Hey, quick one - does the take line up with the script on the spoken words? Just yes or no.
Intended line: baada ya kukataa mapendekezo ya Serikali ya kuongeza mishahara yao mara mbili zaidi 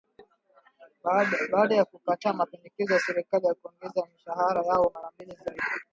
yes